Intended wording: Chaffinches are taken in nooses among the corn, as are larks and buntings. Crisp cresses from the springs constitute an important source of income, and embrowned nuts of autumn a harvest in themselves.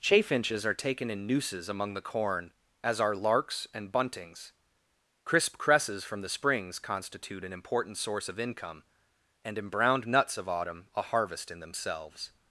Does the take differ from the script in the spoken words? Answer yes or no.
no